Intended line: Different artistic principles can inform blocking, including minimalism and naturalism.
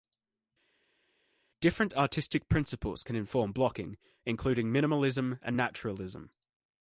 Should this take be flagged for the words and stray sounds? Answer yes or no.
no